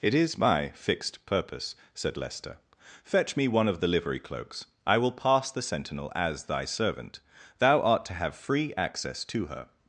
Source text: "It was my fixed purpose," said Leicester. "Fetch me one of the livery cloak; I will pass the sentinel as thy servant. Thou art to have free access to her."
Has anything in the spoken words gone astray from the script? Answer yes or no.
yes